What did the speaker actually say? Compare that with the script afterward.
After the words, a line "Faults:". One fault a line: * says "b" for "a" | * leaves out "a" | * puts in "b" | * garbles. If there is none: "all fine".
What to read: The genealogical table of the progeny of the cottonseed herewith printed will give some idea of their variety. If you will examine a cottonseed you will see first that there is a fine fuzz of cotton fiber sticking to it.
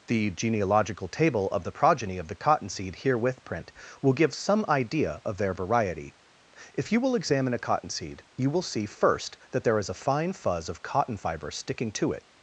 The genealogical table of the progeny of the cottonseed herewith print will give some idea of their variety. If you will examine a cottonseed you will see first that there is a fine fuzz of cotton fiber sticking to it.
Faults:
* says "print" for "printed"